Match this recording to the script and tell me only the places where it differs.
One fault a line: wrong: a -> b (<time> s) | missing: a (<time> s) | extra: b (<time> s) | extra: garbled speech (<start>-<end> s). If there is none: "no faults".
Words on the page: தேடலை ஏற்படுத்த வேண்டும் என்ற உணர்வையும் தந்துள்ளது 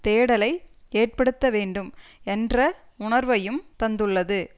no faults